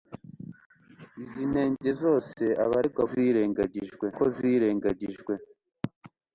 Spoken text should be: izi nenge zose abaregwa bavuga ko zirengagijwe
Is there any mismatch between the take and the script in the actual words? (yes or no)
yes